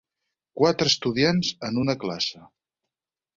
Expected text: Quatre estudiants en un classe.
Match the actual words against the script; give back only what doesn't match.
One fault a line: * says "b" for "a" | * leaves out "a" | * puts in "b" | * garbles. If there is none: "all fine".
* says "una" for "un"